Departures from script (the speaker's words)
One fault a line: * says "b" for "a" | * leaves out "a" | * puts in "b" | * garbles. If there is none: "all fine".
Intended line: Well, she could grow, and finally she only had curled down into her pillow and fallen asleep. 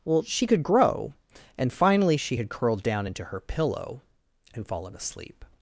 * leaves out "only"